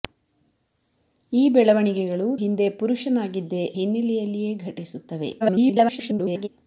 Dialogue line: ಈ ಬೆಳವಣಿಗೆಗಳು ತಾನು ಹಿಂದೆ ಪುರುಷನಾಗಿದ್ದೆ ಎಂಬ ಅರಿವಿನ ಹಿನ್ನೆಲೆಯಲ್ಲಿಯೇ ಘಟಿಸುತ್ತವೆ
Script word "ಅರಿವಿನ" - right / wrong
wrong